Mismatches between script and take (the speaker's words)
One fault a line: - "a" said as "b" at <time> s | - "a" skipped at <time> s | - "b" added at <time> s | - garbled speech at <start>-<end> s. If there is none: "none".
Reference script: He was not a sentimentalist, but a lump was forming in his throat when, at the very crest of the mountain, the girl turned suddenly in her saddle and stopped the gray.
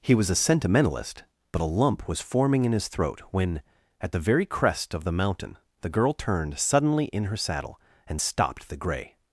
- "not" skipped at 0.3 s